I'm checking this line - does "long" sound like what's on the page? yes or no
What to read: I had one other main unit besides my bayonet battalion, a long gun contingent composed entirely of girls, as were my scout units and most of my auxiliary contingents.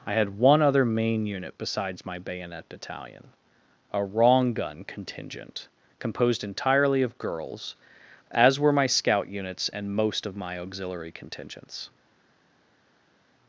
no